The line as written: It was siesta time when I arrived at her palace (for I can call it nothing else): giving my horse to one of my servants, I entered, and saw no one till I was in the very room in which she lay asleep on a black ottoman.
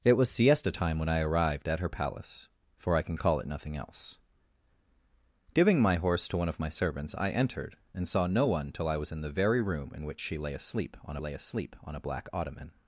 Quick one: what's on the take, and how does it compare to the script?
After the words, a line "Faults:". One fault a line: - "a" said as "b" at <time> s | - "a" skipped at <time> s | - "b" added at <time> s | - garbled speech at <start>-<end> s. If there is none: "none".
It was siesta time when I arrived at her palace (for I can call it nothing else): giving my horse to one of my servants, I entered, and saw no one till I was in the very room in which she lay asleep on lay asleep on a black ottoman.
Faults:
- "lay asleep on" added at 11.2 s